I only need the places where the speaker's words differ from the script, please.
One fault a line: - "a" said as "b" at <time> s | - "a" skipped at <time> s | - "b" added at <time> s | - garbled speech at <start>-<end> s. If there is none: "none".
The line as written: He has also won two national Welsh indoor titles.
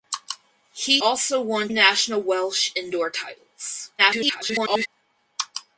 - "has" skipped at 1.0 s
- "two" skipped at 1.7 s
- garbled speech at 4.0-4.9 s